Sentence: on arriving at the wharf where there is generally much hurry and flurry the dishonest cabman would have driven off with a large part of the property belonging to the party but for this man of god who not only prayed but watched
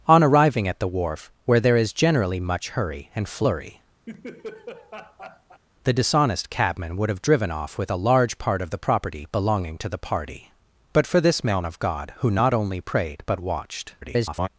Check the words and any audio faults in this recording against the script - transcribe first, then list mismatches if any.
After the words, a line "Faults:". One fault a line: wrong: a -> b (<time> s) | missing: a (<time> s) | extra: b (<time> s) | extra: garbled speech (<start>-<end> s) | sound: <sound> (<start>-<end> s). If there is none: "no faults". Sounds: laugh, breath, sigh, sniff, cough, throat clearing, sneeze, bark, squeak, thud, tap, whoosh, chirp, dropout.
on arriving at the wharf where there is generally much hurry and flurry the dishonest cabman would have driven off with a large part of the property belonging to the party but for this man of god who not only prayed but watched [garbled]
Faults:
sound: laugh (4.1-5.6 s)
extra: garbled speech (14.0-14.5 s)